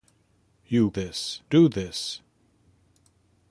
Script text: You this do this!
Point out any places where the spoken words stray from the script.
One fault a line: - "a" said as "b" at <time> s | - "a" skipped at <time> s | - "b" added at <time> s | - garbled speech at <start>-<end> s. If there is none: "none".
none